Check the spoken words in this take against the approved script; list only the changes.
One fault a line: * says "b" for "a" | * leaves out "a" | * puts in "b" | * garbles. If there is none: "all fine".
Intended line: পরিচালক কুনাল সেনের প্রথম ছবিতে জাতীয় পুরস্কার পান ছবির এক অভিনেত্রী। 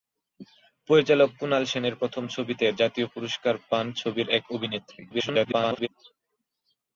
* garbles